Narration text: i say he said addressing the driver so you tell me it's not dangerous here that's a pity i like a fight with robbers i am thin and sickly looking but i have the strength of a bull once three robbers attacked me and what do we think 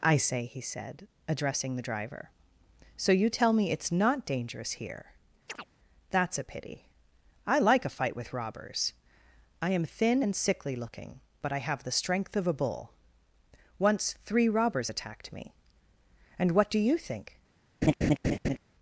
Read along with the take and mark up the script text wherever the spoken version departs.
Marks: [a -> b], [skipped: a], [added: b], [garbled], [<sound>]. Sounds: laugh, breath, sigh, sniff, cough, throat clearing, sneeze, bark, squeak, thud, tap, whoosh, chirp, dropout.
i say he said addressing the driver so you tell me it's not dangerous here [chirp] that's a pity i like a fight with robbers i am thin and sickly looking but i have the strength of a bull once three robbers attacked me and what do [we -> you] think [laugh]